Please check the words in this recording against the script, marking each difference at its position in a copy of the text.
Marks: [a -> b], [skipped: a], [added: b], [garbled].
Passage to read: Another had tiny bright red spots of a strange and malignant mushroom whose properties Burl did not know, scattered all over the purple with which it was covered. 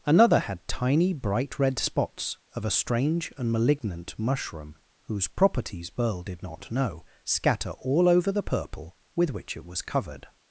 Another had tiny bright red spots of a strange and malignant mushroom whose properties Burl did not know, [scattered -> scatter] all over the purple with which it was covered.